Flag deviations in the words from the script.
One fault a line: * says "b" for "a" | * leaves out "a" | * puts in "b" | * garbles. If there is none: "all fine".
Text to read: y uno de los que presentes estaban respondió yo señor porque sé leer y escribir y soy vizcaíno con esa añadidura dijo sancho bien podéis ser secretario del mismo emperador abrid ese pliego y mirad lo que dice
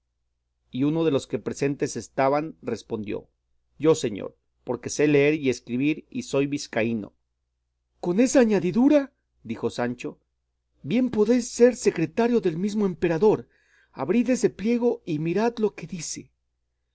all fine